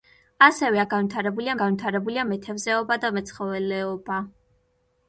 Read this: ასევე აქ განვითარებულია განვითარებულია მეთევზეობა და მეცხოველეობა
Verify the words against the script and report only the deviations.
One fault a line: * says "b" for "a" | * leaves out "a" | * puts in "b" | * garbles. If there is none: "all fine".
all fine